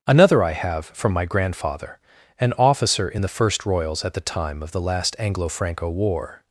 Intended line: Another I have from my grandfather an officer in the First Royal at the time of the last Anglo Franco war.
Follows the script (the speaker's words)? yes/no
no